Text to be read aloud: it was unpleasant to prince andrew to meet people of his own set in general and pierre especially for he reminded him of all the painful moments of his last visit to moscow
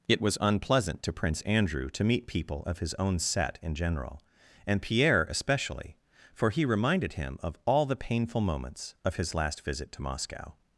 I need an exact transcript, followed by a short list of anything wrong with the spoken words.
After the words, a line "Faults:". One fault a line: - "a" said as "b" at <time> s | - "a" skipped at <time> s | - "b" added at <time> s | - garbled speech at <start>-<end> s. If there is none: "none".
it was unpleasant to prince andrew to meet people of his own set in general and pierre especially for he reminded him of all the painful moments of his last visit to moscow
Faults:
none